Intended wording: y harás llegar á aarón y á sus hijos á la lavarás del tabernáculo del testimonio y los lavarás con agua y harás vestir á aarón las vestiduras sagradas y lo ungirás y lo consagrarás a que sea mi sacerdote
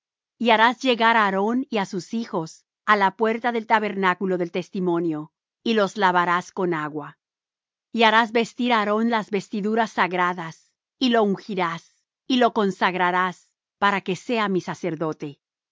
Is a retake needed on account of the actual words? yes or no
yes